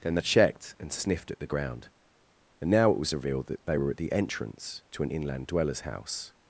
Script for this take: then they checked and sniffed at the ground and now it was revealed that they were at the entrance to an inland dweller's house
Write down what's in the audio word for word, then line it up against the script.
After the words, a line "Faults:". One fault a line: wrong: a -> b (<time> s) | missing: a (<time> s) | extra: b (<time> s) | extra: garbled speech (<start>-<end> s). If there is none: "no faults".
then they checked and sniffed at the ground and now it was revealed that they were at the entrance to an inland dweller's house
Faults:
no faults